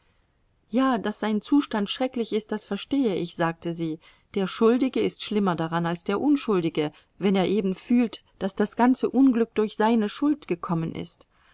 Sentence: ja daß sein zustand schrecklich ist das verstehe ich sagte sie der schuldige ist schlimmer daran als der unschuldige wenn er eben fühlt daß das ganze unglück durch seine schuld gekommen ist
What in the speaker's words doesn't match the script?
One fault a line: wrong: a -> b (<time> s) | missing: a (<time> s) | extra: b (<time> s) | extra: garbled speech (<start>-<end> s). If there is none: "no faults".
no faults